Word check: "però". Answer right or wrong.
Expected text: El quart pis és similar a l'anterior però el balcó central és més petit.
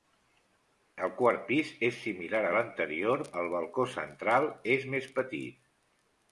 wrong